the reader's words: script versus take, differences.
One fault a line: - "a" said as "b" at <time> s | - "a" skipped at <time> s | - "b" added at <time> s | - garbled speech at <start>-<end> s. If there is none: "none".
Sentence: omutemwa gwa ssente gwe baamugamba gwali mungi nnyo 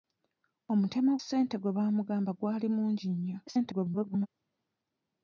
- "gwa" skipped at 1.1 s
- garbled speech at 3.5-4.3 s